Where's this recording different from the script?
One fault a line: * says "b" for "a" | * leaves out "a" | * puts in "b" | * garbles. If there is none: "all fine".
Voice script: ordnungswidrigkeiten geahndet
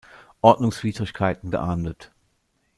all fine